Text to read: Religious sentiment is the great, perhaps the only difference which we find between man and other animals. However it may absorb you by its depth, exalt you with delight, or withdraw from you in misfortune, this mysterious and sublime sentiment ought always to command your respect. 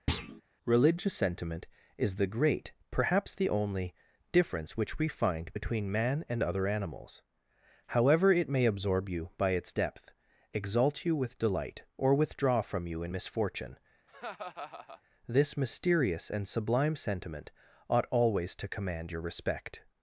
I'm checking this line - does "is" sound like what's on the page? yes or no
yes